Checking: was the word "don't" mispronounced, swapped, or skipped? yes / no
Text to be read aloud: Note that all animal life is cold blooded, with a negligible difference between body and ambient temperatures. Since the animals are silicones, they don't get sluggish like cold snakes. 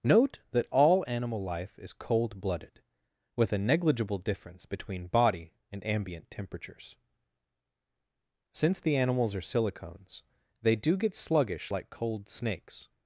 yes